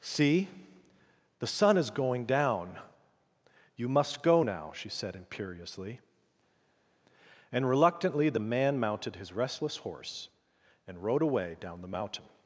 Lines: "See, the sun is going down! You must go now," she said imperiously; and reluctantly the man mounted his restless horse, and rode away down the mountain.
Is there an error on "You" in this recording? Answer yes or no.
no